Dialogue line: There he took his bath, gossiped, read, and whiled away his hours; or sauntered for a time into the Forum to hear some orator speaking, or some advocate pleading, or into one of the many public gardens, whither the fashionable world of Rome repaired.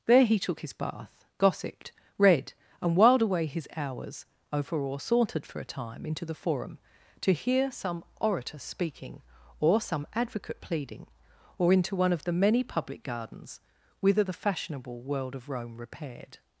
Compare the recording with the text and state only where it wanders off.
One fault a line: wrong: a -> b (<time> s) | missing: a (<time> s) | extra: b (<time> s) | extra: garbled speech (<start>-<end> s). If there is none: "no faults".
extra: over (4.5 s)